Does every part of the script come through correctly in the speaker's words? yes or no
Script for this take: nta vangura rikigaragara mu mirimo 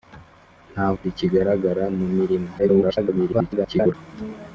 no